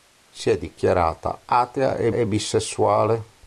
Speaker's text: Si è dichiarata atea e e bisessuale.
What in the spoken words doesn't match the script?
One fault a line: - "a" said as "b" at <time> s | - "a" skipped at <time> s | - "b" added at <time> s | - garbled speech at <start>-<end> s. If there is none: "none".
none